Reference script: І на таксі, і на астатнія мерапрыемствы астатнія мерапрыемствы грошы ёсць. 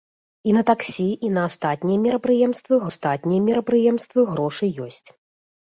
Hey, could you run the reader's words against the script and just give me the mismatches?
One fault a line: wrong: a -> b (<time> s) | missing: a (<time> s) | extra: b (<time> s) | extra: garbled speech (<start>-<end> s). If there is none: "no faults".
no faults